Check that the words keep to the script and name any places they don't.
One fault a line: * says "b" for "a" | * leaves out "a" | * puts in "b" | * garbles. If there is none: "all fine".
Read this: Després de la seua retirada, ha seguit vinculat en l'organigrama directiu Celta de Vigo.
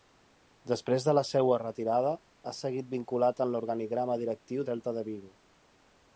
all fine